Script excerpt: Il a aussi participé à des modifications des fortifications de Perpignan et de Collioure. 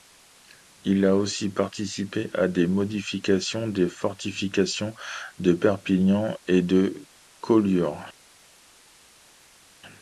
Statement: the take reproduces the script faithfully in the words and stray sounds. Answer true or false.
true